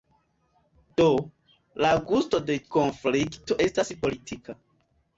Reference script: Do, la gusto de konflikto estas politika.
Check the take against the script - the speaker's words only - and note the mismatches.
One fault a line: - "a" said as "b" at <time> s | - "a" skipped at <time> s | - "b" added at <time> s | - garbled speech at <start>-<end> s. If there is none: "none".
none